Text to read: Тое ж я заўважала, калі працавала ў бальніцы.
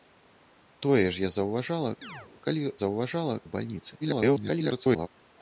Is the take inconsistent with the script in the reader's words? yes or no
yes